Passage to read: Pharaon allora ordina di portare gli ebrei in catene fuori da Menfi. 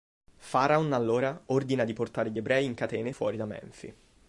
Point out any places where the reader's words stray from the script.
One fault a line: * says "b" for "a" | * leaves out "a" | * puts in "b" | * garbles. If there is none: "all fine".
all fine